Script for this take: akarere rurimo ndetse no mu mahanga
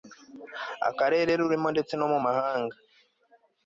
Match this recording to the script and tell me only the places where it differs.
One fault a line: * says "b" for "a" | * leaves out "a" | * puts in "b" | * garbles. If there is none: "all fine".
all fine